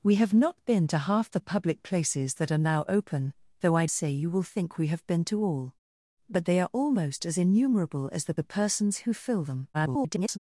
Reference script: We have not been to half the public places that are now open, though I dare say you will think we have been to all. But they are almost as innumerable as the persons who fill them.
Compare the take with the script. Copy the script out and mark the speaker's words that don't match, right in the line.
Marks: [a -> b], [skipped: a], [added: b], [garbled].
We have not been to half the public places that are now open, though I [skipped: dare] say you will think we have been to all. But they are almost as innumerable as the [added: the] persons who fill them. [garbled]